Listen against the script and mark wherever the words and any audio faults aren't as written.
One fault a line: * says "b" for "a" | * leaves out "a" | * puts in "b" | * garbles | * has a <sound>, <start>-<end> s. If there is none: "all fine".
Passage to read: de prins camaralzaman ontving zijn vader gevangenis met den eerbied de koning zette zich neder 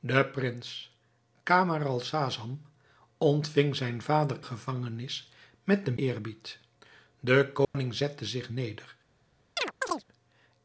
* has a dropout, 7.6-7.7 s
* has a chirp, 9.6-10.0 s